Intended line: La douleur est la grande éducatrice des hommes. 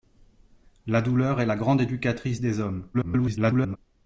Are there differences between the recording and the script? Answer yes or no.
yes